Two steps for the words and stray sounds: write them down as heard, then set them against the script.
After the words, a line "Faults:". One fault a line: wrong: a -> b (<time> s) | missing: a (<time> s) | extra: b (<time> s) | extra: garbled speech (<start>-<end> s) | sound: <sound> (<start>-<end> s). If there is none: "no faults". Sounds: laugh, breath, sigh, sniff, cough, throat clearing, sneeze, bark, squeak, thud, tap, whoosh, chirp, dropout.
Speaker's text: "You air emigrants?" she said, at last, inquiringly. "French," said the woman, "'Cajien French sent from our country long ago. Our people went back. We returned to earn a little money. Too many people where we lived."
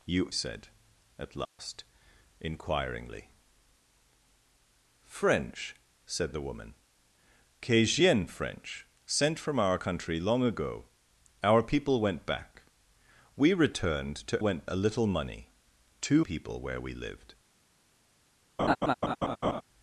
"You said, at last, inquiringly. "French," said the woman, "'Cajien French sent from our country long ago. Our people went back. We returned to went a little money. Too people where we lived."
Faults:
missing: air emigrants she (0.3 s)
sound: dropout (1.5-1.6 s)
wrong: earn -> went (14.4 s)
missing: many (16.3 s)
sound: laugh (18.6-19.6 s)